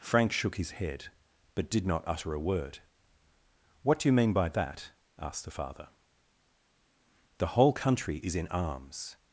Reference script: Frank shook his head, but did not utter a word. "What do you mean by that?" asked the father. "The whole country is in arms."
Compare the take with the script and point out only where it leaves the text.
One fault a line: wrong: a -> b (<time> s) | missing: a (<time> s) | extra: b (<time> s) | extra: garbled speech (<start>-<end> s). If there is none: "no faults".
no faults